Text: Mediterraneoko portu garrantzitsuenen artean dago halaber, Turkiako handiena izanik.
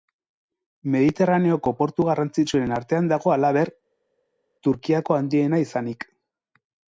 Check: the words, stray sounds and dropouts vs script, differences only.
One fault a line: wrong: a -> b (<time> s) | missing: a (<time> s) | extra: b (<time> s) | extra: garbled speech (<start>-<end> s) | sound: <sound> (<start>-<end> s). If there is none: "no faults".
no faults